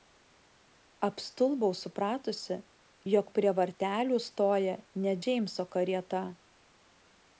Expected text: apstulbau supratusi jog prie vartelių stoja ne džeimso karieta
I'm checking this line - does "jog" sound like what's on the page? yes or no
yes